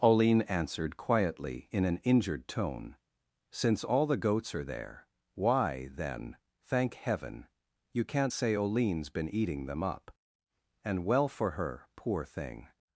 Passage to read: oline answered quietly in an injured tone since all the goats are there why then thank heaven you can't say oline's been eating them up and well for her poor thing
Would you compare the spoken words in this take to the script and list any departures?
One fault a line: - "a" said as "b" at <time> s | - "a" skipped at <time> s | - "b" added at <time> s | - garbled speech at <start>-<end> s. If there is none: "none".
none